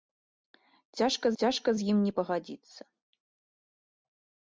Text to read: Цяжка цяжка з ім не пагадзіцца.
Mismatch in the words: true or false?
false